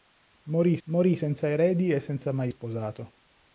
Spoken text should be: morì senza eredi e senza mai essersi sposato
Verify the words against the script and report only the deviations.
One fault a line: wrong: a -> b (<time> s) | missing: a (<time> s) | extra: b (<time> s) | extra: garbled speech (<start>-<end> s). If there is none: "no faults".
extra: morì (0.9 s)
missing: essersi (2.5 s)